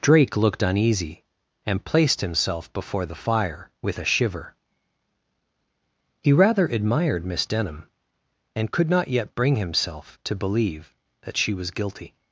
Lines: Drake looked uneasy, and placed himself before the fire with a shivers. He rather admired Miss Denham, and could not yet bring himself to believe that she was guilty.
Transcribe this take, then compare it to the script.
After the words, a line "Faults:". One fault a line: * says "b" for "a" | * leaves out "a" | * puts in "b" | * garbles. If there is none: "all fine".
Drake looked uneasy, and placed himself before the fire with a shiver. He rather admired Miss Denham, and could not yet bring himself to believe that she was guilty.
Faults:
* says "shiver" for "shivers"